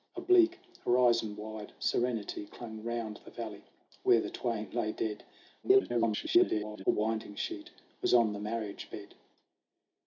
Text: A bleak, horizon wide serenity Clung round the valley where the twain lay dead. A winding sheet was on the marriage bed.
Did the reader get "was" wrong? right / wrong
right